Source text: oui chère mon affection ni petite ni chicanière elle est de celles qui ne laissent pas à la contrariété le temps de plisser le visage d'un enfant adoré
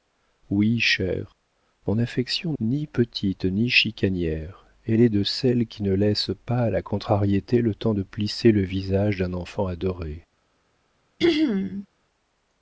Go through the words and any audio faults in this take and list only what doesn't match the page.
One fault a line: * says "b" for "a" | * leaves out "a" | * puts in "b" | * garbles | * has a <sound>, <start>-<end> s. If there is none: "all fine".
* has a throat clearing, 11.2-11.9 s